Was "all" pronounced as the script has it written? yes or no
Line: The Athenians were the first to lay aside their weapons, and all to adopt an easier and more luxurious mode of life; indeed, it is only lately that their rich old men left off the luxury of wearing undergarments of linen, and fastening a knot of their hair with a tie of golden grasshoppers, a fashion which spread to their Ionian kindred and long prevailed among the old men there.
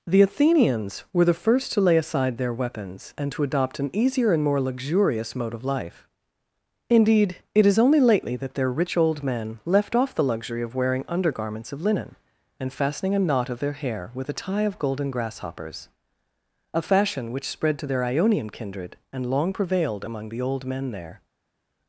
no